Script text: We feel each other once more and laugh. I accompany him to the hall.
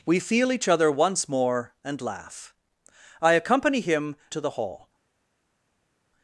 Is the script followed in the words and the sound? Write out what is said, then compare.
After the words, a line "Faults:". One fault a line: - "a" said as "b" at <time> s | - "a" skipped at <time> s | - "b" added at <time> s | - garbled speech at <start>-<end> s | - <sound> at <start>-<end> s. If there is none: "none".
We feel each other once more and laugh. I accompany him to the hall.
Faults:
none